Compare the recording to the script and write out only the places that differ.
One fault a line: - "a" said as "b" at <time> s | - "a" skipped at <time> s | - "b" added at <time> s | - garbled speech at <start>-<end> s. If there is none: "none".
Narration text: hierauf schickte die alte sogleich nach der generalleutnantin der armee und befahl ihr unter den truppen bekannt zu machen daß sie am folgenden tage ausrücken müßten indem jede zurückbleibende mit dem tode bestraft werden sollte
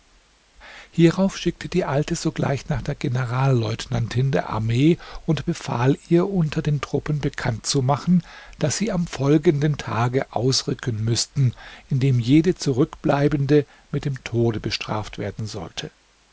none